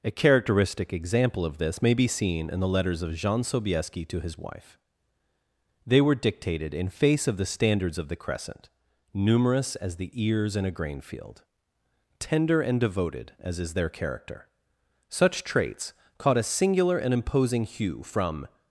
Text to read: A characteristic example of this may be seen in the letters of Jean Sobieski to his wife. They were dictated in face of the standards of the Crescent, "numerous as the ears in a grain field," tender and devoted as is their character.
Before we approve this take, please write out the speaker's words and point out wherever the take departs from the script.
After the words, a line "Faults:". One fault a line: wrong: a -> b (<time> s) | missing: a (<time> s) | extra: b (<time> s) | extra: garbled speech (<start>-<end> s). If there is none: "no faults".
A characteristic example of this may be seen in the letters of Jean Sobieski to his wife. They were dictated in face of the standards of the Crescent, "numerous as the ears in a grain field," tender and devoted as is their character. Such traits caught a singular and imposing hue from
Faults:
extra: Such traits caught a singular and imposing hue from (15.1 s)